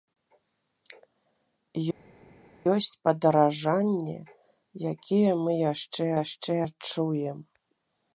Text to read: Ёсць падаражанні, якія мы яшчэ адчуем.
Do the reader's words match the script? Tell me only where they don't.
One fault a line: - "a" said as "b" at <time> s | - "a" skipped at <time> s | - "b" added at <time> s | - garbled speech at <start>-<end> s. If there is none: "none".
- "яшчэ" added at 6.2 s